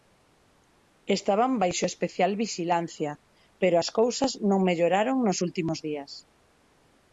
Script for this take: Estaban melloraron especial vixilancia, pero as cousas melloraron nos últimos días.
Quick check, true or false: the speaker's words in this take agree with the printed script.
false